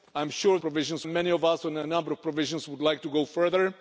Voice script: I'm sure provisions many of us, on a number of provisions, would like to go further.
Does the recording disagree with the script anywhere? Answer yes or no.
no